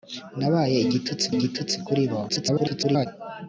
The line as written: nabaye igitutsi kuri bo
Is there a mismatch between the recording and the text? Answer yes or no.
yes